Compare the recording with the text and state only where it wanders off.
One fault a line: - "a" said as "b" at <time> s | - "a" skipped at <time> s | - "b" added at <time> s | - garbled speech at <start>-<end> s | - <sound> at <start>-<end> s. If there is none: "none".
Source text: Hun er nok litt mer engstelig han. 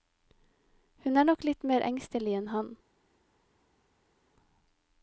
- "enn" added at 2.4 s